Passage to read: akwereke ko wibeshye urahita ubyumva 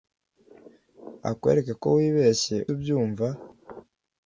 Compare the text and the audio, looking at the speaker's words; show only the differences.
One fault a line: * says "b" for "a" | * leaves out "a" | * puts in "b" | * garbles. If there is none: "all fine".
* leaves out "urahita"